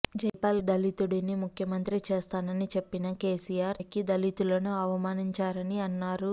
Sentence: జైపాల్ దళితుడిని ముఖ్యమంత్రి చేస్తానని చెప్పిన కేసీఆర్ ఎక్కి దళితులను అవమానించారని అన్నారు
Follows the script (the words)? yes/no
yes